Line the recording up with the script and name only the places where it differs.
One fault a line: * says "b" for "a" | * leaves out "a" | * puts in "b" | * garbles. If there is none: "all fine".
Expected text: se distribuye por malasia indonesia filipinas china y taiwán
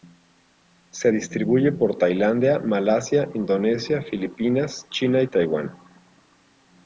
* puts in "tailandia"